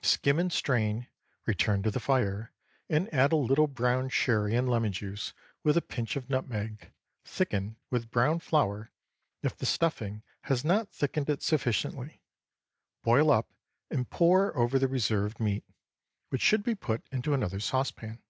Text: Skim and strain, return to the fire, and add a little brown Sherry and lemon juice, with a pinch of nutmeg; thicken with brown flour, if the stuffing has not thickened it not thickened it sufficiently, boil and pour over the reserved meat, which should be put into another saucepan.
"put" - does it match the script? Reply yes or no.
yes